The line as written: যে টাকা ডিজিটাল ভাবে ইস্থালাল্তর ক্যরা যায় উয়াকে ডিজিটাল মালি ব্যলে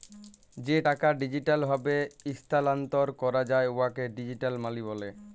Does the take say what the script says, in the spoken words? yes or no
yes